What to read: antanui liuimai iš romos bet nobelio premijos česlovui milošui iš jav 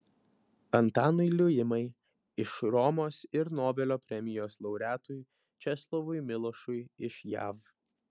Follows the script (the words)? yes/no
no